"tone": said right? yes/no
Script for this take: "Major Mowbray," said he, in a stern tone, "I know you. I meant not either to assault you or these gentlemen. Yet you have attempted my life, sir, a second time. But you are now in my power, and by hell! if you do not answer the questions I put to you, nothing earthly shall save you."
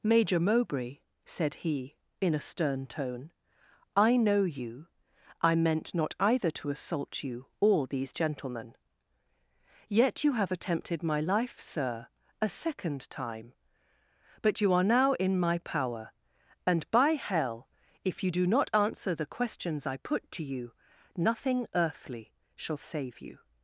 yes